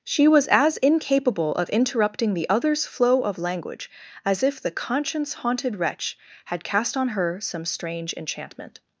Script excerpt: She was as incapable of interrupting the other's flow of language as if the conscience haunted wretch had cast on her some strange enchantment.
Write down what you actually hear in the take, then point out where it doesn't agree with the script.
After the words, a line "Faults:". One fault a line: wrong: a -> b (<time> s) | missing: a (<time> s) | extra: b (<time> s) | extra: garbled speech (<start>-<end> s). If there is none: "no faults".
She was as incapable of interrupting the other's flow of language as if the conscience haunted wretch had cast on her some strange enchantment.
Faults:
no faults